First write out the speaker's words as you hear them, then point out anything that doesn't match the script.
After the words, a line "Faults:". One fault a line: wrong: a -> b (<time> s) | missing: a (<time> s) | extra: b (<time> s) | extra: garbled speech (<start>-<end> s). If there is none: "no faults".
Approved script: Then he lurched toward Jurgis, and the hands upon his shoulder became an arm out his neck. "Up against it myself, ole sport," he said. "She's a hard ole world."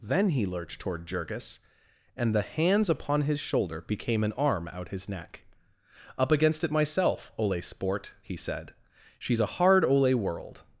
Then he lurched toward Jurgis, and the hands upon his shoulder became an arm out his neck. "Up against it myself, ole sport," he said. "She's a hard ole world."
Faults:
no faults